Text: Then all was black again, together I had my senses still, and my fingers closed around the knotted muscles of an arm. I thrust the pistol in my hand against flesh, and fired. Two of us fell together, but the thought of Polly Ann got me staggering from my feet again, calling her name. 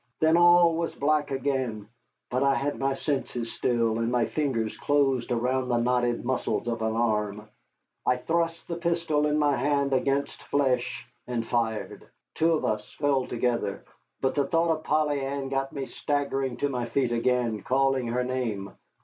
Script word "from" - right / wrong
wrong